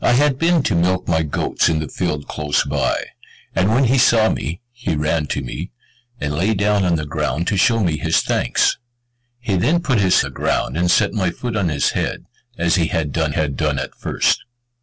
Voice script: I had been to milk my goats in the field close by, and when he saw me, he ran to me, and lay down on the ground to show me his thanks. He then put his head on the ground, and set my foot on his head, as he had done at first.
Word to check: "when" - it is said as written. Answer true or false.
true